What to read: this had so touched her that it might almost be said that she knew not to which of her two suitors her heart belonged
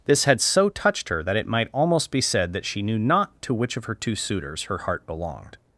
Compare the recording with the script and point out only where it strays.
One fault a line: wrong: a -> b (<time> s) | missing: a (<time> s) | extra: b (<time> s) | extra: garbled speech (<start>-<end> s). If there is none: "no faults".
no faults